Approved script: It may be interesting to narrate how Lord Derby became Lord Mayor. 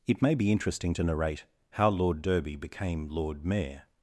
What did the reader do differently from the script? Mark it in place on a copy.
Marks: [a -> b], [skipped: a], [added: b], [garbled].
It may be interesting to narrate how Lord Derby became Lord Mayor.